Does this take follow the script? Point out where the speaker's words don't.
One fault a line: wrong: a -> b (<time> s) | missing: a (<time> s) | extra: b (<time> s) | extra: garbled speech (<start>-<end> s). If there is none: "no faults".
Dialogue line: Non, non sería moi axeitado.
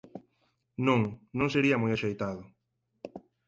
no faults